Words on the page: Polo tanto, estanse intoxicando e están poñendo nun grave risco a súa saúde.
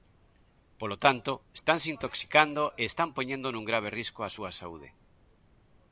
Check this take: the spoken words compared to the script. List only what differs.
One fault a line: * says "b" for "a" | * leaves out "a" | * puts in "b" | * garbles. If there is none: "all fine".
all fine